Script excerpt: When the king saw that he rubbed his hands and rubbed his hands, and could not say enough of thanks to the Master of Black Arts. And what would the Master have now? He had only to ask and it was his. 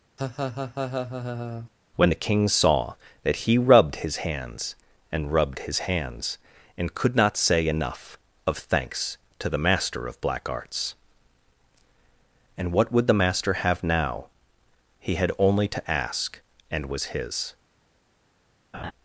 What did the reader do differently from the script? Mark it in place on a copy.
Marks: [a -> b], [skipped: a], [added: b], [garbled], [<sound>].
[laugh] When the king saw that he rubbed his hands and rubbed his hands, and could not say enough of thanks to the Master of Black Arts. And what would the Master have now? He had only to ask and [skipped: it] was his. [laugh]